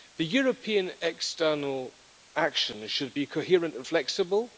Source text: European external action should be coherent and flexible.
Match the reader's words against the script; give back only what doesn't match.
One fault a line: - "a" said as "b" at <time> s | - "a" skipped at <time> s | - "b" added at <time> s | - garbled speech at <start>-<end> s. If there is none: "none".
none